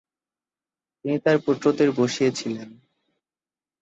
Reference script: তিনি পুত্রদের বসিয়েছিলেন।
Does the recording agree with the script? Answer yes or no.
no